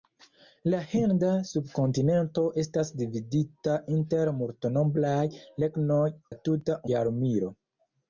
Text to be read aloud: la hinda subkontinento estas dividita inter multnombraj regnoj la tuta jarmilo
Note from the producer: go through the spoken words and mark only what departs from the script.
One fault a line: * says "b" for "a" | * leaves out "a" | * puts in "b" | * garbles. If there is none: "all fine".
all fine